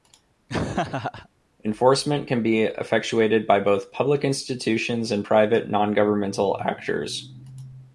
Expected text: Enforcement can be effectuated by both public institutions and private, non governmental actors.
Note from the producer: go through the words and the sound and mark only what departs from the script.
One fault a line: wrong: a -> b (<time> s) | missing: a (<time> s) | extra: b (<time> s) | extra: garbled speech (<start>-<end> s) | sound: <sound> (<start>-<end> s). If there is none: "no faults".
sound: laugh (0.5-1.3 s)